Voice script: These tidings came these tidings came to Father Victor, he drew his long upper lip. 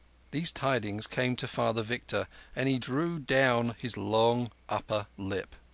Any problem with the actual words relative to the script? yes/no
yes